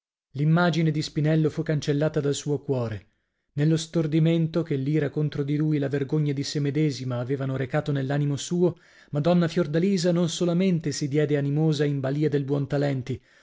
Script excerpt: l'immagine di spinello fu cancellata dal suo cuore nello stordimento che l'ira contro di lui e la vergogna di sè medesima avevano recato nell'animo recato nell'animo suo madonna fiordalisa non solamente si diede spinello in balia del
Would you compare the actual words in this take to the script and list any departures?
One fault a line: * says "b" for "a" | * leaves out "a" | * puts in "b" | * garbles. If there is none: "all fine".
* leaves out "recato nell'animo"
* says "animosa" for "spinello"